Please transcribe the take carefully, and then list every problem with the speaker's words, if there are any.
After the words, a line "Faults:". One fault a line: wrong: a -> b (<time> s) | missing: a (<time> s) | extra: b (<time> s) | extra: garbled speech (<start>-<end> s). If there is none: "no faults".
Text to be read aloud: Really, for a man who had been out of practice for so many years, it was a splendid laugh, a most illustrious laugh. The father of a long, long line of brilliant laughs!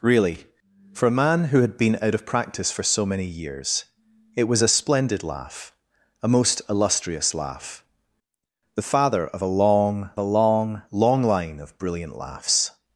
Really, for a man who had been out of practice for so many years, it was a splendid laugh, a most illustrious laugh. The father of a long a long, long line of brilliant laughs!
Faults:
extra: a long (10.2 s)